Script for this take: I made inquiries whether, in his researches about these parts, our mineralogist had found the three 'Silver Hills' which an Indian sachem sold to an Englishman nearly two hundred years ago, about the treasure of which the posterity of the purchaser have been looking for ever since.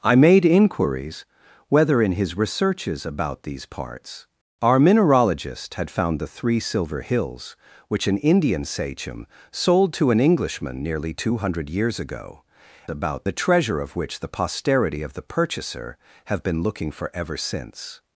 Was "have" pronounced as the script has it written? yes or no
yes